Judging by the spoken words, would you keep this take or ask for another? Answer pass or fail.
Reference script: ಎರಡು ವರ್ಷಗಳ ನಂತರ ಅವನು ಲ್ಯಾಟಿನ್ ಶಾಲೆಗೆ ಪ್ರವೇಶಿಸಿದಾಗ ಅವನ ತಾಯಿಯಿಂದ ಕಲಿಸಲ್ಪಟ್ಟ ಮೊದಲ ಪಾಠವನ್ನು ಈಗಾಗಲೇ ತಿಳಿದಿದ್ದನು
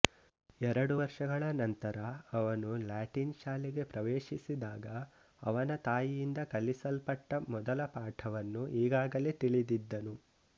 pass